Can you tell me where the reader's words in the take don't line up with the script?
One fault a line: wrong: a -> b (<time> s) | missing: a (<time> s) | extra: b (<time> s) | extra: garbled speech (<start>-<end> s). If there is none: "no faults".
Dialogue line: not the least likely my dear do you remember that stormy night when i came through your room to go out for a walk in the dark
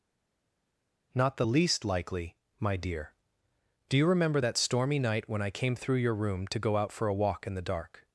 no faults